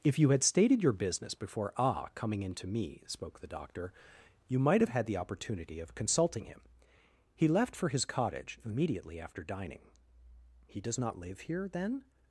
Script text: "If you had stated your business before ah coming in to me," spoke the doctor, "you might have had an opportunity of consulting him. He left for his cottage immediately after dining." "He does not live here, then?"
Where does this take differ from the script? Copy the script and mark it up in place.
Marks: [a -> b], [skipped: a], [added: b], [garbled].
"If you had stated your business before ah coming in to me," spoke the doctor, "you might have had [an -> the] opportunity of consulting him. He left for his cottage immediately after dining." "He does not live here, then?"